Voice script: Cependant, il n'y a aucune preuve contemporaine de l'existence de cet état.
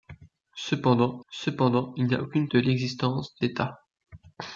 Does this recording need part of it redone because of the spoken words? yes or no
yes